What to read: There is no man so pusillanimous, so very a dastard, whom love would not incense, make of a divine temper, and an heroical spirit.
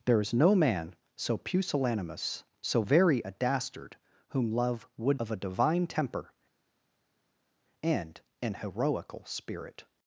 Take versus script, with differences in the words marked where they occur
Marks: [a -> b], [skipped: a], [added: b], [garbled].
There is no man so pusillanimous, so very a dastard, whom love would [skipped: not incense, make] of a divine temper, and an heroical spirit.